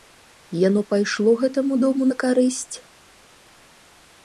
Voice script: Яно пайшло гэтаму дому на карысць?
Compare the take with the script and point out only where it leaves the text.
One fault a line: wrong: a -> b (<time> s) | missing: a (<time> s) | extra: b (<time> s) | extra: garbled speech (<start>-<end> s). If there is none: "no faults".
no faults